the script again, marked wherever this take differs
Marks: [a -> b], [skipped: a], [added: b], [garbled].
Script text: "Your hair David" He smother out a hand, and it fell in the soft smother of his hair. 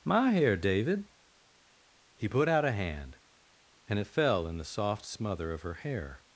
["Your -> My] hair David" He [smother -> put] out a hand, and it fell in the soft smother of [his -> her] hair.